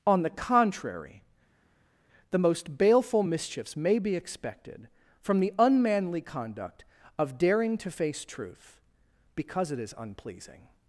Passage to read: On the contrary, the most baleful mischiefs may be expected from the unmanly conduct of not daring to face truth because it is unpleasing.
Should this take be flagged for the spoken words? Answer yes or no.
yes